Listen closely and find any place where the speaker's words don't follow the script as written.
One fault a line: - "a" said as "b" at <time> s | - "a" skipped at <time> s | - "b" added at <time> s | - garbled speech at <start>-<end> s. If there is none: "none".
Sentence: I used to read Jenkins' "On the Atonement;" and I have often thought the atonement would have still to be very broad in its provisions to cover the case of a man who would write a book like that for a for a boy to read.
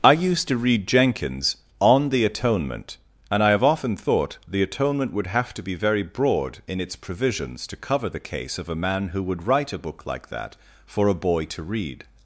- "still" skipped at 5.5 s
- "for a" skipped at 11.2 s